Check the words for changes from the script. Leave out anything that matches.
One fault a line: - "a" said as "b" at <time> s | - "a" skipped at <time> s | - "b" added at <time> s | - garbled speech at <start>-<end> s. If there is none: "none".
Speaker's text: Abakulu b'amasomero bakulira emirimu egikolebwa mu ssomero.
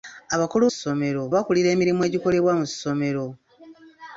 - "b'amasomero" said as "ssomero" at 0.7 s